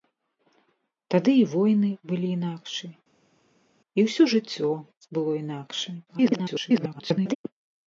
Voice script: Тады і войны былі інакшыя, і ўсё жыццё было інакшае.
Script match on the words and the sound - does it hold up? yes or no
no